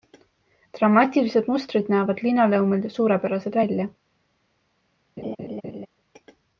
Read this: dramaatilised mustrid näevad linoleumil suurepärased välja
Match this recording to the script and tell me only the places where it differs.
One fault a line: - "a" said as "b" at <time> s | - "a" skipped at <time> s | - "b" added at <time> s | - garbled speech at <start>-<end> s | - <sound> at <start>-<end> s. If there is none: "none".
- laugh at 5.2-5.9 s